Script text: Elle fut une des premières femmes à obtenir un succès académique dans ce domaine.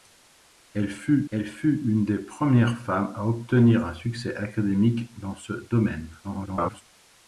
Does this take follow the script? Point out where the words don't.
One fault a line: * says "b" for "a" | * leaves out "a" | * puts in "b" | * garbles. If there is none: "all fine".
* puts in "elle fut"
* garbles